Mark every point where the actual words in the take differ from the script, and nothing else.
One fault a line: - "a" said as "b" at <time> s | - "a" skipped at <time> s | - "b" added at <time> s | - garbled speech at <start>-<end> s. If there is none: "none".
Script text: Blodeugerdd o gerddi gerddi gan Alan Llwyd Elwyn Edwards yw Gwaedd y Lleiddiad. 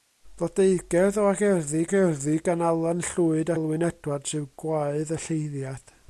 none